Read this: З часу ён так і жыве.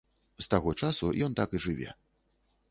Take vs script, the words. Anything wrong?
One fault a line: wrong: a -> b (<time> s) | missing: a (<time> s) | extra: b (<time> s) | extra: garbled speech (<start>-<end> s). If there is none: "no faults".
extra: таго (0.5 s)